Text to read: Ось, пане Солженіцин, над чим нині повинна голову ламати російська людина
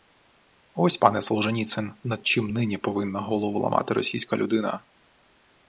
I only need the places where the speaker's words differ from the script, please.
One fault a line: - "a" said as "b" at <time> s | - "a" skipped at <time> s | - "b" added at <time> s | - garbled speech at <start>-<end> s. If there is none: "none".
none